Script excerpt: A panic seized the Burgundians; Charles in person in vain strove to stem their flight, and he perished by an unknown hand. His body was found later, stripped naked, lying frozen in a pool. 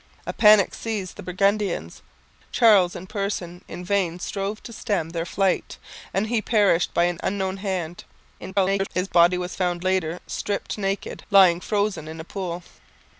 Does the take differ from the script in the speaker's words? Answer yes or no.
yes